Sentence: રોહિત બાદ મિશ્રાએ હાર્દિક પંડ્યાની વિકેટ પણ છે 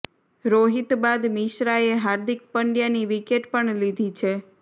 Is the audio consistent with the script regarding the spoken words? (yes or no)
no